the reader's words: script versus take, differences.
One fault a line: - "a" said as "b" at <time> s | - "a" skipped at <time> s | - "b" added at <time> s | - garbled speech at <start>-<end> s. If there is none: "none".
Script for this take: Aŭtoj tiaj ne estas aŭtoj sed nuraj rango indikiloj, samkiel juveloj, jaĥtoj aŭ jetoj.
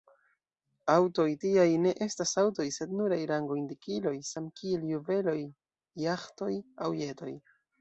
none